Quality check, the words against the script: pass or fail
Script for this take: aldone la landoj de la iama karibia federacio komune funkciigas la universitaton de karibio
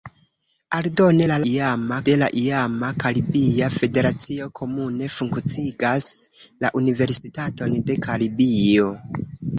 fail